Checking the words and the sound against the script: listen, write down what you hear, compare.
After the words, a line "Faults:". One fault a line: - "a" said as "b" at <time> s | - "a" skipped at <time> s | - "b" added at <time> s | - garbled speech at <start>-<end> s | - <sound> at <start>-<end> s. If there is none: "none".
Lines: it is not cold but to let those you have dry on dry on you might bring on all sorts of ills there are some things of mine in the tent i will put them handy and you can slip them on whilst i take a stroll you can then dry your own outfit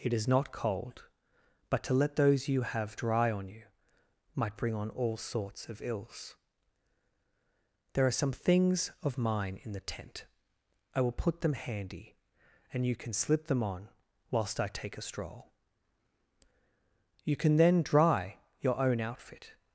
it is not cold but to let those you have dry on you might bring on all sorts of ills there are some things of mine in the tent i will put them handy and you can slip them on whilst i take a stroll you can then dry your own outfit
Faults:
- "dry on" skipped at 3.5 s